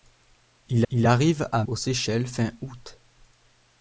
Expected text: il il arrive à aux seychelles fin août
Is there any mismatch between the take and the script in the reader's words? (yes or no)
no